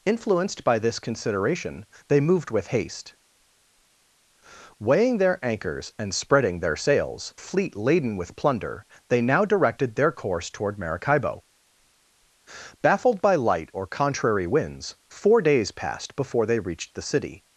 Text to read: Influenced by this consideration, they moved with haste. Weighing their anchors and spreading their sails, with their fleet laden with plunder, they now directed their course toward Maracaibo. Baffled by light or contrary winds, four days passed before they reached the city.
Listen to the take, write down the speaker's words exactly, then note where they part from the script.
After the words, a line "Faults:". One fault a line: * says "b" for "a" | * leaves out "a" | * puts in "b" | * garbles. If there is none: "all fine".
Influenced by this consideration, they moved with haste. Weighing their anchors and spreading their sails, fleet laden with plunder, they now directed their course toward Maracaibo. Baffled by light or contrary winds, four days passed before they reached the city.
Faults:
* leaves out "with their"